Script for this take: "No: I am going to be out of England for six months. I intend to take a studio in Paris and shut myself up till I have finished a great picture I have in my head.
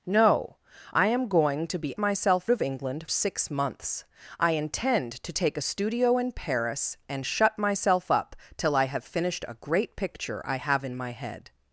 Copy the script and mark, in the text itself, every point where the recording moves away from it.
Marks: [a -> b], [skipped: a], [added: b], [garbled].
"No: I am going to be [out -> myself] of England [skipped: for] six months. I intend to take a studio in Paris and shut myself up till I have finished a great picture I have in my head.